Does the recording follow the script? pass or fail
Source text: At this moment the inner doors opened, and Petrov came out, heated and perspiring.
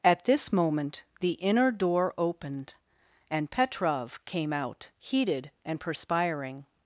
fail